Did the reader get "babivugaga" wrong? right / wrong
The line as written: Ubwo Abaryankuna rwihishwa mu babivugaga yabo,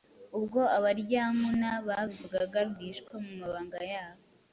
wrong